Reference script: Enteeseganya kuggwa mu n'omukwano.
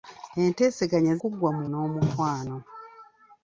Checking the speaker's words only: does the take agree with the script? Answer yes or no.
yes